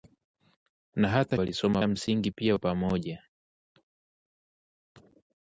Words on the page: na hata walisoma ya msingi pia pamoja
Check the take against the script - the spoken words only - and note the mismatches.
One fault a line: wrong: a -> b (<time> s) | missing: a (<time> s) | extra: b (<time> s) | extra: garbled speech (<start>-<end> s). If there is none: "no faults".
no faults